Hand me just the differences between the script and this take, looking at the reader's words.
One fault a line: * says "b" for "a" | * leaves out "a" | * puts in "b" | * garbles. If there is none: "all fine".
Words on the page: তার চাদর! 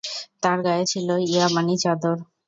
* puts in "গায়ে ছিল ইয়ামানী"